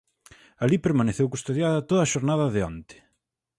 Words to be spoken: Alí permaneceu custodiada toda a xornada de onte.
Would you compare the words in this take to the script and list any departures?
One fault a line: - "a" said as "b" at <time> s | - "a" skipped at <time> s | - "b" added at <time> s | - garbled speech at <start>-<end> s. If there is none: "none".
none